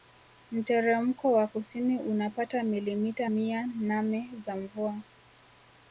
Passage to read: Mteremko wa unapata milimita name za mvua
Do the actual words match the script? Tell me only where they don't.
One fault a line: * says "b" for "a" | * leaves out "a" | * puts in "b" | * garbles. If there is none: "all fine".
* puts in "kusini"
* puts in "mia"